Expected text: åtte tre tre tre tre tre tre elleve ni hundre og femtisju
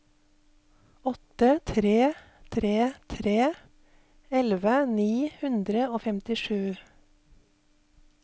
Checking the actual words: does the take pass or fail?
fail